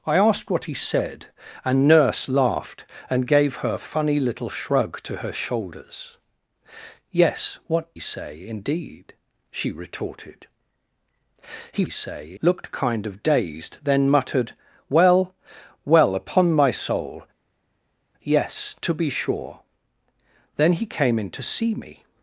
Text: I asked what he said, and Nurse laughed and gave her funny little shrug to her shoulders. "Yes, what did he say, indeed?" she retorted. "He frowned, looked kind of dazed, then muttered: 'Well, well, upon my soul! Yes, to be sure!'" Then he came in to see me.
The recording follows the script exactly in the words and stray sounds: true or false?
false